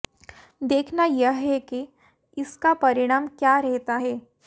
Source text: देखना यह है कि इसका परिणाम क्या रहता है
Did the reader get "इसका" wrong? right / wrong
right